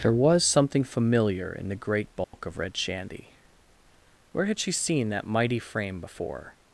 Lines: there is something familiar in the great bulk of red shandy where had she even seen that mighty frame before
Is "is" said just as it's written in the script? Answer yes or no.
no